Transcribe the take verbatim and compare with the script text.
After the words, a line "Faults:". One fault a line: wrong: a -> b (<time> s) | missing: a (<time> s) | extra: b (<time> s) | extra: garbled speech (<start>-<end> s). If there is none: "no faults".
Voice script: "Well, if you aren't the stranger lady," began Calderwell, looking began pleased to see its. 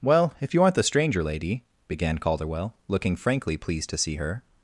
"Well, if you aren't the stranger lady," began Calderwell, looking frankly pleased to see her.
Faults:
wrong: began -> frankly (3.2 s)
wrong: its -> her (4.2 s)